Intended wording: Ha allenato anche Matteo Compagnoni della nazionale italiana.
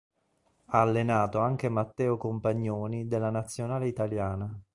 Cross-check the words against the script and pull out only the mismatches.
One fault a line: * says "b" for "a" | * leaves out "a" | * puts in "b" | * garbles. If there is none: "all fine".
all fine